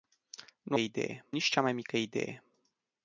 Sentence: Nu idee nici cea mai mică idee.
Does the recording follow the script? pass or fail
pass